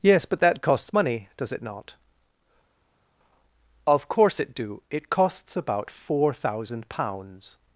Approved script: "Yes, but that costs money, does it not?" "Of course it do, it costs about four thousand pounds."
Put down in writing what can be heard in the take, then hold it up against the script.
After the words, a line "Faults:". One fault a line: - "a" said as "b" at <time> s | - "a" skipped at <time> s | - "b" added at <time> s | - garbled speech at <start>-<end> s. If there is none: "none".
"Yes, but that costs money, does it not?" "Of course it do, it costs about four thousand pounds."
Faults:
none